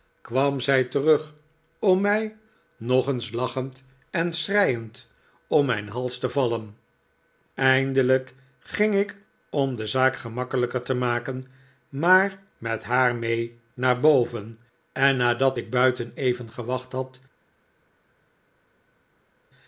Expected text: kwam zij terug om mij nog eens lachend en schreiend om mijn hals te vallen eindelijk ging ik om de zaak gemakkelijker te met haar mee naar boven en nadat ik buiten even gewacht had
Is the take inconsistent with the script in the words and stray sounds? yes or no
yes